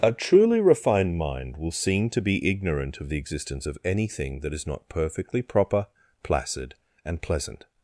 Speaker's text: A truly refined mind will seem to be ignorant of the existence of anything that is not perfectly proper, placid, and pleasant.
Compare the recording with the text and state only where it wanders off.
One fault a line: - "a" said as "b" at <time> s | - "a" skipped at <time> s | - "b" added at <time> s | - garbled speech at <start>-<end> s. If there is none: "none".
none